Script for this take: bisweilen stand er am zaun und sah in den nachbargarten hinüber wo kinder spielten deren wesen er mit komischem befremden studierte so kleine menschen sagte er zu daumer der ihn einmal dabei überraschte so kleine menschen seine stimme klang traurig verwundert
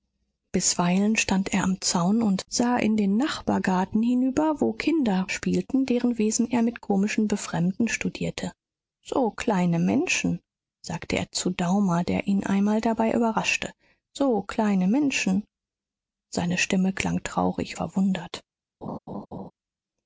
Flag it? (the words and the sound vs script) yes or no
yes